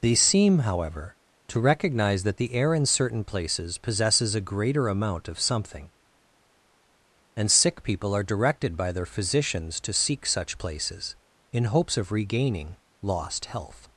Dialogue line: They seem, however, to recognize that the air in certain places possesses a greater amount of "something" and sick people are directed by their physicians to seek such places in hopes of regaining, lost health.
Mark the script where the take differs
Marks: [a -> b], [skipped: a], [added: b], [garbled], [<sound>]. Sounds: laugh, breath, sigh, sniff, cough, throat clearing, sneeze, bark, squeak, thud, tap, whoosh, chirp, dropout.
They seem, however, to recognize that the air in certain places possesses a greater amount of "something" and sick people are directed by their physicians to seek such places in hopes of regaining, lost health.